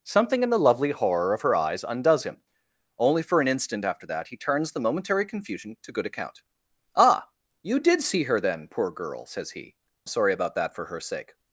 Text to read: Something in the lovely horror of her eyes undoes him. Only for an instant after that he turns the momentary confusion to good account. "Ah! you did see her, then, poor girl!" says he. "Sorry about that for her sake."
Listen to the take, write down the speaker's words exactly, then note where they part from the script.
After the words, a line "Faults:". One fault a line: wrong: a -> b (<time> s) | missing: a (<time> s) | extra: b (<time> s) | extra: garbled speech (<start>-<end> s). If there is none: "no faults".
Something in the lovely horror of her eyes undoes him. Only for an instant after that he turns the momentary confusion to good account. "Ah! you did see her, then, poor girl!" says he. "Sorry about that for her sake."
Faults:
no faults